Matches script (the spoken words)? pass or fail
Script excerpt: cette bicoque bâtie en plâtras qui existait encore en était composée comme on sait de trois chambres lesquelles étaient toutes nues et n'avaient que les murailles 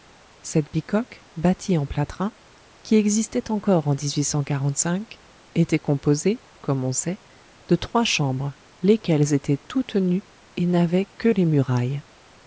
pass